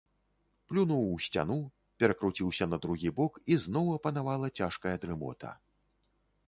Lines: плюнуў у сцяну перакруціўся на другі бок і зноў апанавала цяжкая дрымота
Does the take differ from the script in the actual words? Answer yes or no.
no